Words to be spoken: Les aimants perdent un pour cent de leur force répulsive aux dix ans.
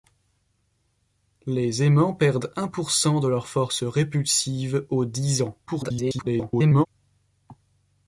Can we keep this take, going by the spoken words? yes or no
no